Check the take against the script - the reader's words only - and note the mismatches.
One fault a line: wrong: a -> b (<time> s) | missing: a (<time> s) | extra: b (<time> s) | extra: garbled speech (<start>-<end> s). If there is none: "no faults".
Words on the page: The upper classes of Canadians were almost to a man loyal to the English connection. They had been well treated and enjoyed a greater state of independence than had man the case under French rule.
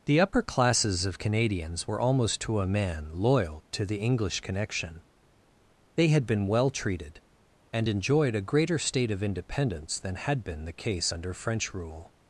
wrong: man -> been (10.4 s)